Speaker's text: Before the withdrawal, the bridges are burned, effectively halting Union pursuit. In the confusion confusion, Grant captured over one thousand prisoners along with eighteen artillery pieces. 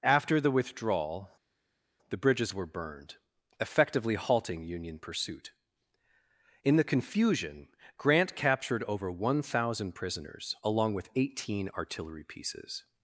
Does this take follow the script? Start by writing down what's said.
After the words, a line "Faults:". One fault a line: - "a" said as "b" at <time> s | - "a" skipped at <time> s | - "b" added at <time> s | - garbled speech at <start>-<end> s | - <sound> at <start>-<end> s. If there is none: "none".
After the withdrawal, the bridges were burned, effectively halting Union pursuit. In the confusion, Grant captured over one thousand prisoners along with eighteen artillery pieces.
Faults:
- "Before" said as "After" at 0.0 s
- "are" said as "were" at 2.5 s
- "confusion" skipped at 7.7 s